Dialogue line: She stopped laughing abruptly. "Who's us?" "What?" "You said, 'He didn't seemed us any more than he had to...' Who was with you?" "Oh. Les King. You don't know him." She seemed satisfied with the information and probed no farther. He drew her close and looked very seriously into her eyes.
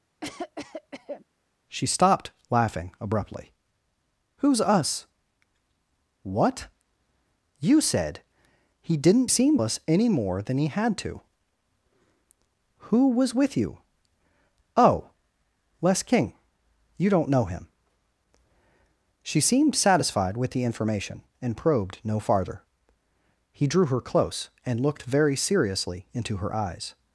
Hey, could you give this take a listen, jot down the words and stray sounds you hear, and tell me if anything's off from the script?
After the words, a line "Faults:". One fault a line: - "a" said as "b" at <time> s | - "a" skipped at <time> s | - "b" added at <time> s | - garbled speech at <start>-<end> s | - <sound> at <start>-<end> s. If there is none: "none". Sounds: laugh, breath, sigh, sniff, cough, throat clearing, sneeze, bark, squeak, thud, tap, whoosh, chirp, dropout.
She stopped laughing abruptly. "Who's us?" "What?" "You said, 'He didn't seemed us any more than he had to...' Who was with you?" "Oh. Les King. You don't know him." She seemed satisfied with the information and probed no farther. He drew her close and looked very seriously into her eyes.
Faults:
- cough at 0.2-1.2 s